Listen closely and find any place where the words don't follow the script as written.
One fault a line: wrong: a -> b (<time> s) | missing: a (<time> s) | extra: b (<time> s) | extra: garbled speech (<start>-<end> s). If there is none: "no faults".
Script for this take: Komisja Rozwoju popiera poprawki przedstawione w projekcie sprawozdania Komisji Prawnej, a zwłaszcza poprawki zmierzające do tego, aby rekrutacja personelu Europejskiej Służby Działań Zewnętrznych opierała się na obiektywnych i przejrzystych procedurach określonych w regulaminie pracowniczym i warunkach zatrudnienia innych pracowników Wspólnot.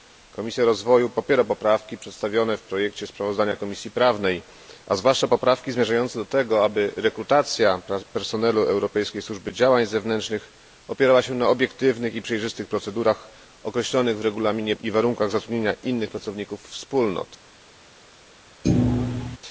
missing: pracowniczym (14.8 s)